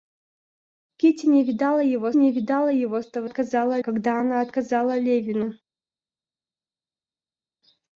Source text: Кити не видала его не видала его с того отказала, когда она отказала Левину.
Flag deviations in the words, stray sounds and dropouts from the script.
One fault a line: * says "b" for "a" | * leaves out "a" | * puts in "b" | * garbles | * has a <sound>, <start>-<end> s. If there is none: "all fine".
all fine